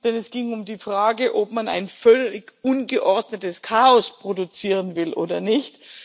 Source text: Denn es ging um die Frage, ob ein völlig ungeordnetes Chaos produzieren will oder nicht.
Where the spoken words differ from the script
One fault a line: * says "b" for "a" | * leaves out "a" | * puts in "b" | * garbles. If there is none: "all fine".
* puts in "man"